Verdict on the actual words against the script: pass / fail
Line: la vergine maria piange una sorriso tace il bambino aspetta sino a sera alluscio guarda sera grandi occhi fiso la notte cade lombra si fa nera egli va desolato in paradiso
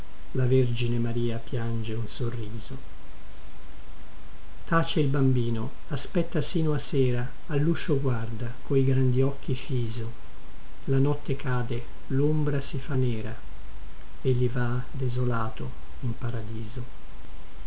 fail